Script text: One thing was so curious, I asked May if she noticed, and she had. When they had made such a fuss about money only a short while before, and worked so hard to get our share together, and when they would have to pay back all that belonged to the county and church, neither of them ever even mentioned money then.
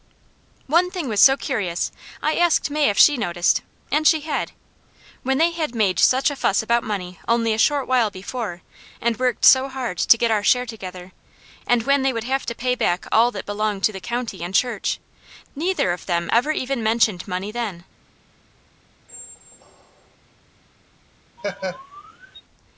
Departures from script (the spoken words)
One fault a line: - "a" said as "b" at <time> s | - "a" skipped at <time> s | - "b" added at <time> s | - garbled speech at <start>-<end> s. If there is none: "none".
none